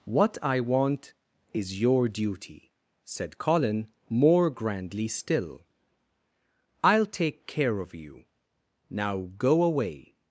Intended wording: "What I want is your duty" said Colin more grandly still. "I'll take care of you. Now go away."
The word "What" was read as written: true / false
true